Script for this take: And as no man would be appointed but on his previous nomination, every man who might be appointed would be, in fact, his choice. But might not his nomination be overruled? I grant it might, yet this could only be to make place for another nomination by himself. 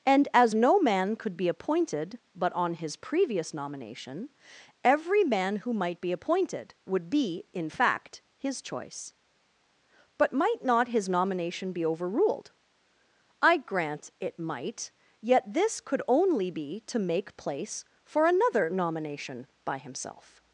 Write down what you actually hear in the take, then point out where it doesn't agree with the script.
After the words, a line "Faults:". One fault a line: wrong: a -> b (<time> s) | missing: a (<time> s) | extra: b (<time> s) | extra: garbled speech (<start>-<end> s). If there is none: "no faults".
And as no man could be appointed but on his previous nomination, every man who might be appointed would be, in fact, his choice. But might not his nomination be overruled? I grant it might, yet this could only be to make place for another nomination by himself.
Faults:
wrong: would -> could (1.1 s)